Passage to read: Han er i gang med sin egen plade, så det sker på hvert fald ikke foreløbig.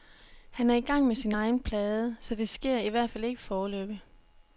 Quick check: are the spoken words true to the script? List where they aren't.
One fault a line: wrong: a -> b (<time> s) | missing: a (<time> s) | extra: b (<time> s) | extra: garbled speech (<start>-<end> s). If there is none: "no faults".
wrong: på -> i (2.8 s)